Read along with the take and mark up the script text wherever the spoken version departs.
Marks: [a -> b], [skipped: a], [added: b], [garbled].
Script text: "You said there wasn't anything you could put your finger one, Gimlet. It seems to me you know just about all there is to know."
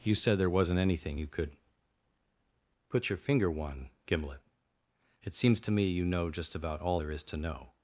"You said there wasn't anything you could put your finger one, Gimlet. It seems to me you know just about all there is to know."